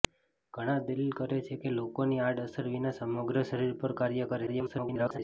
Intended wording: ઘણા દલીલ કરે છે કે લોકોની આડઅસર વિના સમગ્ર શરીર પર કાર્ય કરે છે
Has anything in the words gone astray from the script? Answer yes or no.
yes